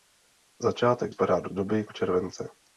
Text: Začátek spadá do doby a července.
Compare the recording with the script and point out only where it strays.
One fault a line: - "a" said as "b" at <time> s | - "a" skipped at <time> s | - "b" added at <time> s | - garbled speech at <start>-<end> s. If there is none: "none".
none